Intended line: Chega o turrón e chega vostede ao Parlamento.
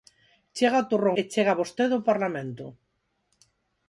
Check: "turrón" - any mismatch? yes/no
no